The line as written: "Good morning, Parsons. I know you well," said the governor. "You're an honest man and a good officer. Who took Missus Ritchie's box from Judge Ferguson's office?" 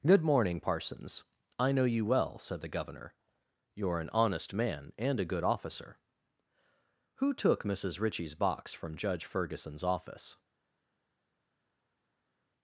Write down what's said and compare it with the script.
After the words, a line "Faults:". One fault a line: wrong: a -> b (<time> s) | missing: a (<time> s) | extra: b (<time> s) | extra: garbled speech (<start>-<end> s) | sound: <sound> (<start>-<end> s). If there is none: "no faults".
"Good morning, Parsons. I know you well," said the governor. "You're an honest man and a good officer. Who took Missus Ritchie's box from Judge Ferguson's office?"
Faults:
no faults